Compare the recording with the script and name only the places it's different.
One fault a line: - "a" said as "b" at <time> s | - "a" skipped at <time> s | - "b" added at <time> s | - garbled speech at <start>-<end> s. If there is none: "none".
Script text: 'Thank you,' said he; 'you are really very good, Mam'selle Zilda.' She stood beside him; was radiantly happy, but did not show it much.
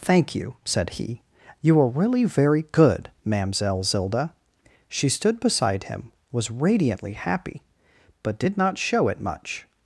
none